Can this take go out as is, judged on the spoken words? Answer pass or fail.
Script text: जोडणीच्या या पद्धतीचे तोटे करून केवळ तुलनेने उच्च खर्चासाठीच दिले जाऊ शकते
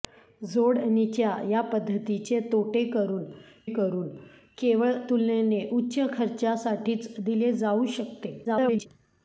fail